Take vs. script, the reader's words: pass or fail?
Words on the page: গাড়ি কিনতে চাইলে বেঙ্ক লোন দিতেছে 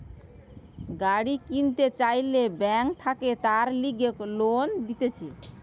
fail